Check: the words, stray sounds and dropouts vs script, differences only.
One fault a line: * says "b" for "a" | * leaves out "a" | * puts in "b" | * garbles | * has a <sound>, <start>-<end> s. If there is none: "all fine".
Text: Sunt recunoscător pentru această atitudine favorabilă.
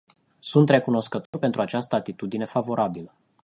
* has a dropout, 1.3-1.3 s